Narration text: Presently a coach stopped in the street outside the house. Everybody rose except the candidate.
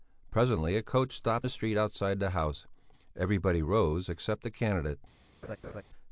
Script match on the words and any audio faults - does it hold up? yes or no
no